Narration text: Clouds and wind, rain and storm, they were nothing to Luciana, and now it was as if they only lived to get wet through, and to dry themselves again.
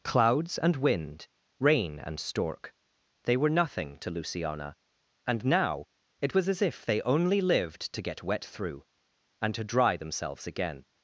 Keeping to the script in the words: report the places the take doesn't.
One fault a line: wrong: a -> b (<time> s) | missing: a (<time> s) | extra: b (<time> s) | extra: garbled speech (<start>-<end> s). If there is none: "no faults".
wrong: storm -> stork (2.2 s)